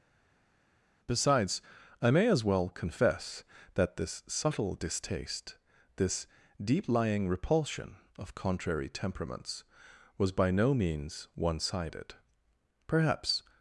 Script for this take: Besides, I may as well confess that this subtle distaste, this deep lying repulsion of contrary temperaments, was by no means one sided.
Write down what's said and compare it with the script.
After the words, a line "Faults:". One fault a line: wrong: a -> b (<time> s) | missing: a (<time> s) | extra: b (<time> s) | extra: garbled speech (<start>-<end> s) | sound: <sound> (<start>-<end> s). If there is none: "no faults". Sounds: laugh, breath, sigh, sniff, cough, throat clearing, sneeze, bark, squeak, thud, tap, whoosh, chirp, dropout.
Besides, I may as well confess that this subtle distaste, this deep lying repulsion of contrary temperaments, was by no means one sided. Perhaps
Faults:
extra: Perhaps (12.9 s)